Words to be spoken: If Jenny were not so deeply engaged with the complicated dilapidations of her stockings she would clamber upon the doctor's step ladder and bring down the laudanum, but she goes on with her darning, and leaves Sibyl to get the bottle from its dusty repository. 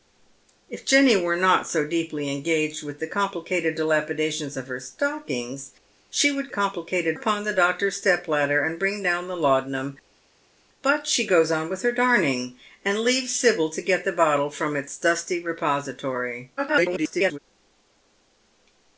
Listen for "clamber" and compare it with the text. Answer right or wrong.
wrong